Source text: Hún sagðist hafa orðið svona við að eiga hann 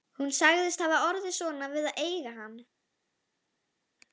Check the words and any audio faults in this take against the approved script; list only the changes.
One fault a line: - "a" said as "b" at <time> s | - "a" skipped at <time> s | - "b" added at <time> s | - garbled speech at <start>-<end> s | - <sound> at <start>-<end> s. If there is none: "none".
none